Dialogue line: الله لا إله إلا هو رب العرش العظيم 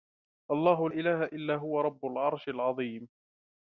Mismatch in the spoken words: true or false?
true